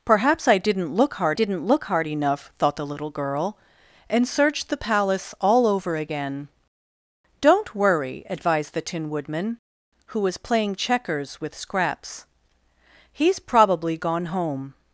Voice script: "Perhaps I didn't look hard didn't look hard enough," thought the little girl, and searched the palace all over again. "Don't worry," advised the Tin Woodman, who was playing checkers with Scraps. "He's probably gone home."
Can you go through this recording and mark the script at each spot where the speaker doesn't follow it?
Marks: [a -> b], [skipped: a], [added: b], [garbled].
"Perhaps I didn't look hard didn't look hard enough," thought the little girl, and searched the palace all over again. "Don't worry," advised the Tin Woodman, who was playing checkers with Scraps. "He's probably gone home."